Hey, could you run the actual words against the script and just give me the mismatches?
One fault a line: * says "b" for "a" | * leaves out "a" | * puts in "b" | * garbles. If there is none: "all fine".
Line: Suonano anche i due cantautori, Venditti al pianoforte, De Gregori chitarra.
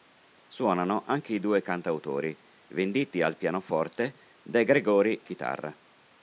all fine